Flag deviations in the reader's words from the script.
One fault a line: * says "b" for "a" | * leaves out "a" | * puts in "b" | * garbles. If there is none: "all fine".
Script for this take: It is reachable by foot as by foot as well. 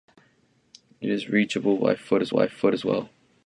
all fine